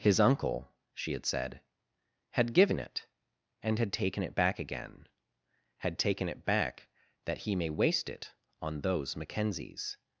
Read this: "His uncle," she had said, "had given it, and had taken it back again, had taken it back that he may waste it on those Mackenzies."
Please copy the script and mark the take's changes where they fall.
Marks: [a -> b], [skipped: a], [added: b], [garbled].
"His uncle," she had said, "had given it, and had taken it back again, had taken it back that he may waste it on those Mackenzies."